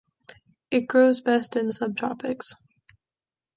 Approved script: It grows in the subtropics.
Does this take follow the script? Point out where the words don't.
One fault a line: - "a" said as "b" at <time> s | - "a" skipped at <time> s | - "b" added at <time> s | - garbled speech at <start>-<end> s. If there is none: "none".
- "best" added at 1.2 s